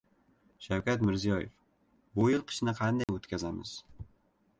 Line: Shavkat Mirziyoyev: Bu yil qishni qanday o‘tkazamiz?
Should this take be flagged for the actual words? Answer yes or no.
no